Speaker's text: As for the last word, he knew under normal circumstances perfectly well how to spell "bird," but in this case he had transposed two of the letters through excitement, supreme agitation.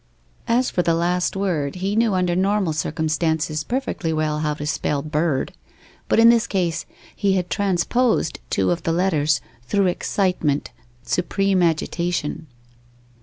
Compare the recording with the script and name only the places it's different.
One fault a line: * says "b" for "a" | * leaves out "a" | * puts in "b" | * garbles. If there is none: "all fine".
all fine